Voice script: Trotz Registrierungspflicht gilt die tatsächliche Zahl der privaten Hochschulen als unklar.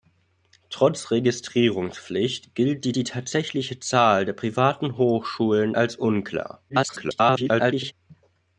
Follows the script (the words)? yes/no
no